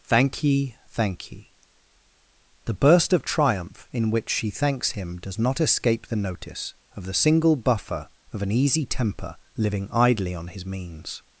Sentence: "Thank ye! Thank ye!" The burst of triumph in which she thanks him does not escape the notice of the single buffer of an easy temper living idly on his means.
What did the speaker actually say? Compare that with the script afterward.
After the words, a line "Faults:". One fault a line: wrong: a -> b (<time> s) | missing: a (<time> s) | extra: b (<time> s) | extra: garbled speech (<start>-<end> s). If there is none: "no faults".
"Thank ye! Thank ye!" The burst of triumph in which she thanks him does not escape the notice of the single buffer of an easy temper living idly on his means.
Faults:
no faults